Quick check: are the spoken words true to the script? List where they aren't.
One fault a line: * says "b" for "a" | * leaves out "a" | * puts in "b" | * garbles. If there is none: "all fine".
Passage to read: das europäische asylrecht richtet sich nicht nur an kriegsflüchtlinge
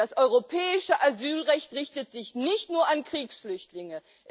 all fine